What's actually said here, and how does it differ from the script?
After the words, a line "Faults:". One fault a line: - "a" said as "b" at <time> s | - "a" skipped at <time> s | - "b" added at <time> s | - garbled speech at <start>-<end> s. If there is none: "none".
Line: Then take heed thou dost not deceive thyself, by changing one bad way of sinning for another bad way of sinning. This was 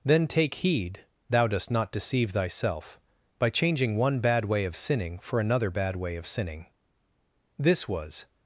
Then take heed thou dost not deceive thyself, by changing one bad way of sinning for another bad way of sinning. This was
Faults:
none